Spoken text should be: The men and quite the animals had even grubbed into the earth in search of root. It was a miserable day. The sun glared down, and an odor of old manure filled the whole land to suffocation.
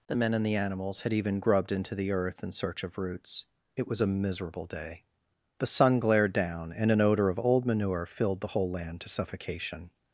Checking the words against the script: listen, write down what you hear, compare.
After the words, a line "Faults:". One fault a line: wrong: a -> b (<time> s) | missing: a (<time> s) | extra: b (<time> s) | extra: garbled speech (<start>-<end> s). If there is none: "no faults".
The men and the animals had even grubbed into the earth in search of roots. It was a miserable day. The sun glared down, and an odor of old manure filled the whole land to suffocation.
Faults:
missing: quite (0.5 s)
wrong: root -> roots (3.0 s)